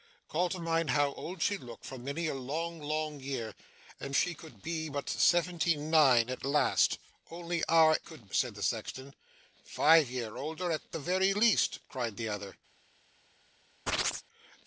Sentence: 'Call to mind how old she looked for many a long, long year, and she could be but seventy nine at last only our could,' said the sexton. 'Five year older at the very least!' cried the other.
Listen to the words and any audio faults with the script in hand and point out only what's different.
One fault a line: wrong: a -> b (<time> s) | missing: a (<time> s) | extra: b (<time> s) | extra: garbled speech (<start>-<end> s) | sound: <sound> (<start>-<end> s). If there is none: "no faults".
sound: chirp (13.9-14.2 s)